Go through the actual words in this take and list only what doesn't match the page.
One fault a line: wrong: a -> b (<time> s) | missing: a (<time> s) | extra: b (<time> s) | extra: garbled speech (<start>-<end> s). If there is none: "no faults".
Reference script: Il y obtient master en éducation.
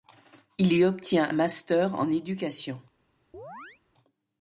no faults